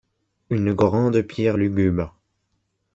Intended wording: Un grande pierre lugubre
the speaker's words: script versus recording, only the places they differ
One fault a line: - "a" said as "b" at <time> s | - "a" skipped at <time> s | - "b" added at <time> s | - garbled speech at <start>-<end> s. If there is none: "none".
- "Un" said as "Une" at 0.5 s